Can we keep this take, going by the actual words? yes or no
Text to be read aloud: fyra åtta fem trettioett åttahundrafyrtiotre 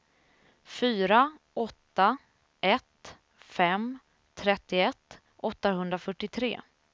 no